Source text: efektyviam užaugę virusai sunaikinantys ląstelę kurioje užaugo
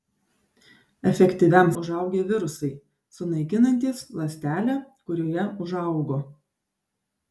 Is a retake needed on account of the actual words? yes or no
no